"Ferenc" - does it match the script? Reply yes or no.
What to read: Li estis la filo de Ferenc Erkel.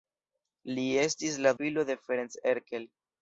yes